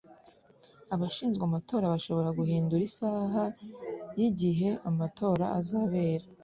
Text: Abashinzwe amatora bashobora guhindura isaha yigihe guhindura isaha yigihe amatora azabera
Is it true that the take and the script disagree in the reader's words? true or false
true